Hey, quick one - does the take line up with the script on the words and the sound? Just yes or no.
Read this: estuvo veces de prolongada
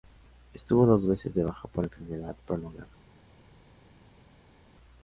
no